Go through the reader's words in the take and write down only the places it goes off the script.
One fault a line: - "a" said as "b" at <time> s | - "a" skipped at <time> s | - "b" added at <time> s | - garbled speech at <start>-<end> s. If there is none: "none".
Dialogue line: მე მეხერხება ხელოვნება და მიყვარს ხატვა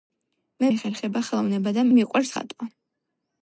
none